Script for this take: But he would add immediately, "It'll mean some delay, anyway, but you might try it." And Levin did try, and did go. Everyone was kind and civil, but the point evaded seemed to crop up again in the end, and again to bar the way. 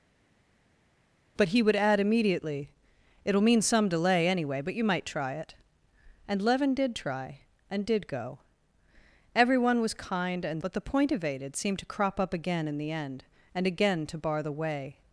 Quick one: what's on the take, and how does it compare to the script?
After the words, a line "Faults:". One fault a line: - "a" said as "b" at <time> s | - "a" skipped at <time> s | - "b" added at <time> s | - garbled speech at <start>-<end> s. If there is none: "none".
But he would add immediately, "It'll mean some delay, anyway, but you might try it." And Levin did try, and did go. Everyone was kind and but the point evaded seemed to crop up again in the end, and again to bar the way.
Faults:
- "civil" skipped at 10.6 s